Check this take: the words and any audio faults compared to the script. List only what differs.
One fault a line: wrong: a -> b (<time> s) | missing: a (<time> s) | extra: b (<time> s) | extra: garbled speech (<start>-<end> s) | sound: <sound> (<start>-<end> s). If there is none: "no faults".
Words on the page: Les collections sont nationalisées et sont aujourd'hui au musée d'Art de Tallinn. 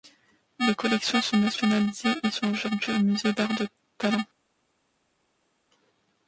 no faults